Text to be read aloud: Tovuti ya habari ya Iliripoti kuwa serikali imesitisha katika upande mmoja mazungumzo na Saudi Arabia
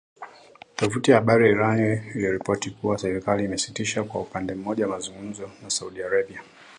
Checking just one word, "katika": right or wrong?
wrong